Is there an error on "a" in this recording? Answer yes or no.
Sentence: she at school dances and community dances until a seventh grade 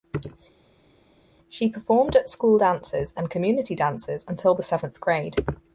yes